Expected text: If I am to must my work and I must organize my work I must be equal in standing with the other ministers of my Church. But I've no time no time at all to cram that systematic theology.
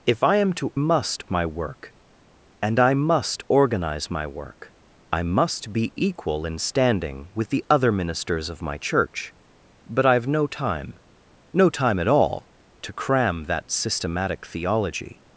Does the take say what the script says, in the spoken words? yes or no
yes